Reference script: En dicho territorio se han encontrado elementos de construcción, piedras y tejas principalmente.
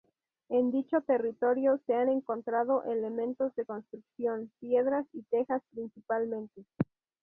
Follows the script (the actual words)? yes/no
yes